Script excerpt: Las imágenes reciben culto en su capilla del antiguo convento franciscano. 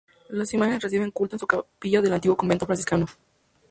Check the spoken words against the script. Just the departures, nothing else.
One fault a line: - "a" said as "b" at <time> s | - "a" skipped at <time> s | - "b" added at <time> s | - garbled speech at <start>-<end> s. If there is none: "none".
none